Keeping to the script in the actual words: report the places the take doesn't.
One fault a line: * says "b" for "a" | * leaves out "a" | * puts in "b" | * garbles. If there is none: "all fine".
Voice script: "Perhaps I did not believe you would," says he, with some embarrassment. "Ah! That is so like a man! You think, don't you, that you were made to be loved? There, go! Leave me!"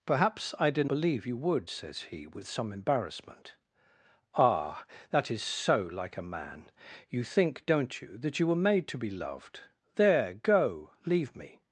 * leaves out "not"